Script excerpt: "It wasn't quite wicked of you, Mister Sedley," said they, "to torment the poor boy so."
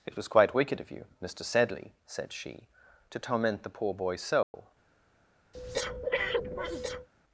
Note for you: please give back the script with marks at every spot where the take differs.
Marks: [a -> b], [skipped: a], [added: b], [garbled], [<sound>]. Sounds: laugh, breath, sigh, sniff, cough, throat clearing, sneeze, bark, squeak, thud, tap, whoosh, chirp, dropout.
"It [wasn't -> was] quite wicked of you, Mister Sedley," said [they, -> she] "to torment the poor boy so." [dropout] [breath]